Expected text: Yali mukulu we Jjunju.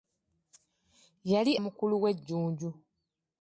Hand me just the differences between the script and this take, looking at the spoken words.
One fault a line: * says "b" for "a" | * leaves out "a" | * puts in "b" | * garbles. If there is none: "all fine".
all fine